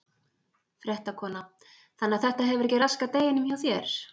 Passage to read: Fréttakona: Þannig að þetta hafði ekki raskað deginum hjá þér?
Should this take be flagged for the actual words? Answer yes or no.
yes